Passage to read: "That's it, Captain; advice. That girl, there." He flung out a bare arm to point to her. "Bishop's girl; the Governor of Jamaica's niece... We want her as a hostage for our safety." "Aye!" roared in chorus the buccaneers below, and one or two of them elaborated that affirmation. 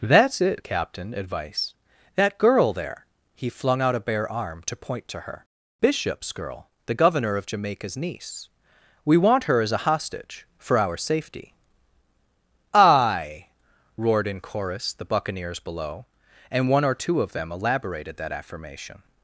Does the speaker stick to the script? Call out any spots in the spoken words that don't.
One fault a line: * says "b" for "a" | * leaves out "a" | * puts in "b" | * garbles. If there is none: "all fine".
all fine